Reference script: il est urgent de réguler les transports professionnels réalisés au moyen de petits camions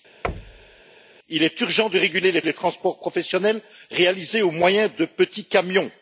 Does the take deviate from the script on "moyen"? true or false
false